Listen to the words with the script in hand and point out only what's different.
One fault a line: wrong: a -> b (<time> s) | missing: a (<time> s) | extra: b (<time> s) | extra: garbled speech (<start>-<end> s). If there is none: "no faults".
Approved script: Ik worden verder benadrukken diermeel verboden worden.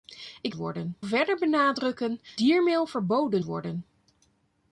no faults